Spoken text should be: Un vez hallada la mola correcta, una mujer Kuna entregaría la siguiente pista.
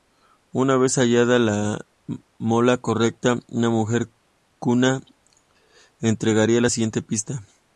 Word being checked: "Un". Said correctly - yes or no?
no